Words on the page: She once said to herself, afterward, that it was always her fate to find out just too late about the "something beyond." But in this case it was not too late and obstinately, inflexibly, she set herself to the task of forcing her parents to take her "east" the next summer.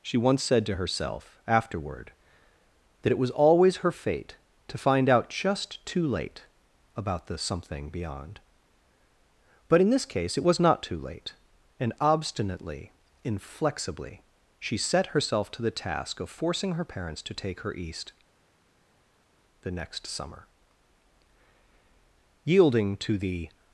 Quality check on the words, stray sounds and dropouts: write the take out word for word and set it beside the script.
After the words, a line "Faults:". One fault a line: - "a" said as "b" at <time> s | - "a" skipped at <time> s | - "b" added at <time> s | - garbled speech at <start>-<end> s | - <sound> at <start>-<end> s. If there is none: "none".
She once said to herself, afterward, that it was always her fate to find out just too late about the "something beyond." But in this case it was not too late and obstinately, inflexibly, she set herself to the task of forcing her parents to take her "east" the next summer. Yielding to the
Faults:
- "Yielding to the" added at 22.4 s